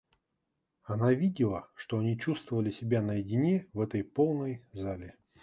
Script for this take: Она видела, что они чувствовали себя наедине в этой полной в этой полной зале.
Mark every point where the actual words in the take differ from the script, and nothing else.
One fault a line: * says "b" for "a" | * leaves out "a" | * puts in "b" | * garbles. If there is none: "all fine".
* leaves out "в этой полной"